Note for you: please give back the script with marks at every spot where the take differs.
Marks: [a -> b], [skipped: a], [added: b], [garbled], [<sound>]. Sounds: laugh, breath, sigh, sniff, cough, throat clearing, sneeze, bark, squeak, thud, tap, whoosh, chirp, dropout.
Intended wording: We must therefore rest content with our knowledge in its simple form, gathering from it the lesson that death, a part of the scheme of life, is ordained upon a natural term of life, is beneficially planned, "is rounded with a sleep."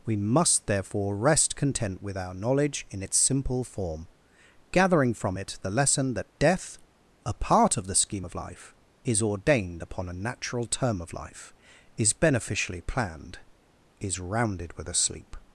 We must therefore rest content with our knowledge in its simple form, gathering from it the lesson that death, a part of the scheme of life, is ordained upon a natural term of life, is beneficially planned, "is rounded with a sleep."